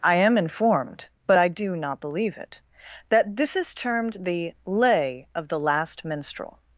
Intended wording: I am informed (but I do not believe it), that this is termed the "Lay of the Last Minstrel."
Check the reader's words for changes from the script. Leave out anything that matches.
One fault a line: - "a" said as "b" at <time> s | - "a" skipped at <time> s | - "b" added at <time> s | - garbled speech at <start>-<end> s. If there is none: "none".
none